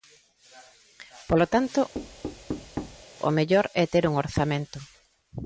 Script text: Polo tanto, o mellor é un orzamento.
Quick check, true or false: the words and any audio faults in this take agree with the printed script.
false